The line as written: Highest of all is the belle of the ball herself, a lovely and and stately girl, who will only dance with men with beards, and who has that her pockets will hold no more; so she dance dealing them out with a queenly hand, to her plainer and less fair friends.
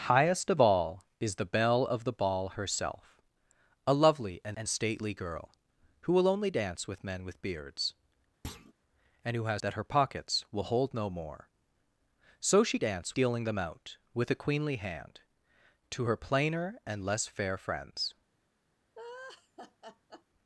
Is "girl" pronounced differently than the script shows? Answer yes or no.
no